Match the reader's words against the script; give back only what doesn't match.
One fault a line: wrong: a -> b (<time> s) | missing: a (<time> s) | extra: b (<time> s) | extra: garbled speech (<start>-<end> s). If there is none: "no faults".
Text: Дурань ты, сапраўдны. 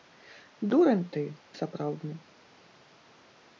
no faults